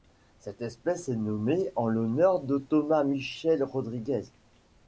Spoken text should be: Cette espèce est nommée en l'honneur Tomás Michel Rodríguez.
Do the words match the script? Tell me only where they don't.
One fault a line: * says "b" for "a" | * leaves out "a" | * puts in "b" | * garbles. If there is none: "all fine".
* puts in "de"